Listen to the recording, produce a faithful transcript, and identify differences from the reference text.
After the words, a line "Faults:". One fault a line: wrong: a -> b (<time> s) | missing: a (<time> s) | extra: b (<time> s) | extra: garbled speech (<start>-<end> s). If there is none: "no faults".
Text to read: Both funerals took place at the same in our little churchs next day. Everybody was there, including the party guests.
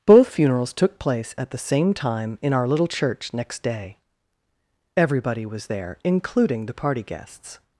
Both funerals took place at the same time in our little church next day. Everybody was there, including the party guests.
Faults:
extra: time (1.9 s)
wrong: churchs -> church (2.9 s)